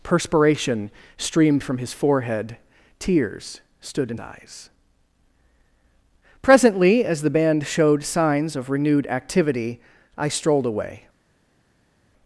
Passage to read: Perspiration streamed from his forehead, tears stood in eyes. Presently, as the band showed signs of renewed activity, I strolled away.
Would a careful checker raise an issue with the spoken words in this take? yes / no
no